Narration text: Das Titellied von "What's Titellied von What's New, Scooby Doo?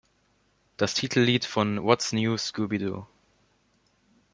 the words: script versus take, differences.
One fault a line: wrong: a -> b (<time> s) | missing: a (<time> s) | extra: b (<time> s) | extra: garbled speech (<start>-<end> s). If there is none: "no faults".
missing: Titellied von What's (2.1 s)